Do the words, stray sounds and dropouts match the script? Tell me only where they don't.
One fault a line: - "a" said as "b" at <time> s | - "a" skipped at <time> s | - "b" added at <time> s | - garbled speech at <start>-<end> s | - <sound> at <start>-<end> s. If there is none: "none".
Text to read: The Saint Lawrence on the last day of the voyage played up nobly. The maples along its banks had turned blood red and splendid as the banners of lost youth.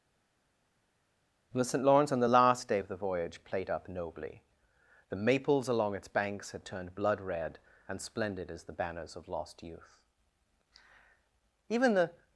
- "Even the" added at 11.7 s